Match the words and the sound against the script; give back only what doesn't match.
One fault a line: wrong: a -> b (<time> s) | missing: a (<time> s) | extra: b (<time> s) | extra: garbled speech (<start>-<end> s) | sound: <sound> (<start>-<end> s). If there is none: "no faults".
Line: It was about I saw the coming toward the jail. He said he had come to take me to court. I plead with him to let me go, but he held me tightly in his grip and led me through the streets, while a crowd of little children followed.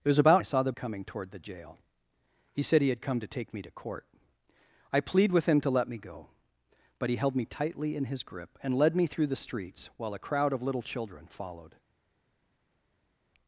no faults